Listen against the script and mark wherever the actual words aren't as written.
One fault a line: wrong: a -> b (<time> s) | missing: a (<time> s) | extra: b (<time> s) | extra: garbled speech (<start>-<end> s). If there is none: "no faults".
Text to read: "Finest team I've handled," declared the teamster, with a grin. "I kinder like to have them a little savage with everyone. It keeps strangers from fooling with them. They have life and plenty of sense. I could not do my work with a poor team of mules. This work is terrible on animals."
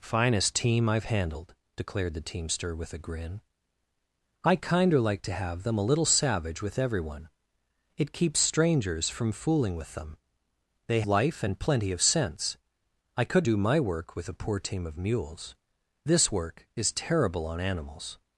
missing: have (11.0 s)
missing: not (13.5 s)